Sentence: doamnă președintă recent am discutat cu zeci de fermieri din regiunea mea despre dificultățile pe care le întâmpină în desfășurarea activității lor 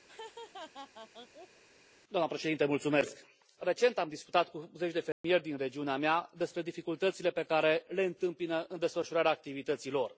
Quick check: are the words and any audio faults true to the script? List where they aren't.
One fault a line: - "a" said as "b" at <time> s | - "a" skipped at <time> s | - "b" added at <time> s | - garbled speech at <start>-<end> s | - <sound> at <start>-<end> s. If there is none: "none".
- laugh at 0.1-1.6 s
- dropout at 5.1-5.2 s